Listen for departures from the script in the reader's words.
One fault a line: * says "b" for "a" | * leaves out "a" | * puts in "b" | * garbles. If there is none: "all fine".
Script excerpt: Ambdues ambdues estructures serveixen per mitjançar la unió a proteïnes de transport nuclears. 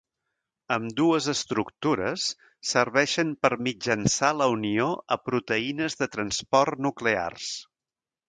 * leaves out "ambdues"